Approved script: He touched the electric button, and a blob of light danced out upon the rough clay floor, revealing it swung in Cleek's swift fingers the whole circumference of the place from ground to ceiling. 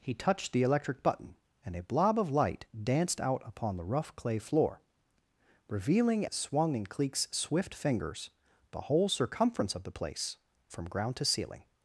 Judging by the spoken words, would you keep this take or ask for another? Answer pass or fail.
pass